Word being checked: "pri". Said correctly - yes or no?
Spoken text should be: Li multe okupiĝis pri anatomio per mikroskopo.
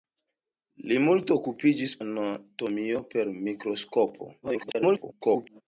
no